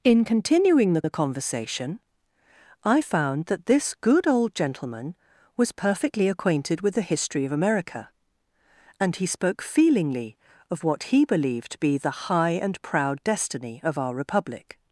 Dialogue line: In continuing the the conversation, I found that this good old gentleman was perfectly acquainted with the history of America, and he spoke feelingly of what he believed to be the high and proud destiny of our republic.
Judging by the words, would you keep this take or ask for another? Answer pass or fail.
pass